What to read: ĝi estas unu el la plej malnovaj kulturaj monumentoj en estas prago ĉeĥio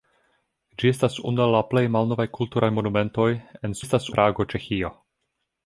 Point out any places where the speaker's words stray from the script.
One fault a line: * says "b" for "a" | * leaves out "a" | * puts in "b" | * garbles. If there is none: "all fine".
all fine